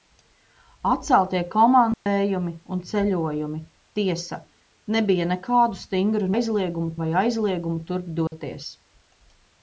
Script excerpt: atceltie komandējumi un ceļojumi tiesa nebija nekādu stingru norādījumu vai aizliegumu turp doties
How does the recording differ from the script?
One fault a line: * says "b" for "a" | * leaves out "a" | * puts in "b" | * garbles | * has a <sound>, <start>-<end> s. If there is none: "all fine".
* has a dropout, 1.9-2.1 s
* says "aizliegumu" for "norādījumu"
* has a dropout, 8.3-8.3 s